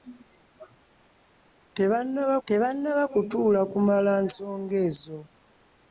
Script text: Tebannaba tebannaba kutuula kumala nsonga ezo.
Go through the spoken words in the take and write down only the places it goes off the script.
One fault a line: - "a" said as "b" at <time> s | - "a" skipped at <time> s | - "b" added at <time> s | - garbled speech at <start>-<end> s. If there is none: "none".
none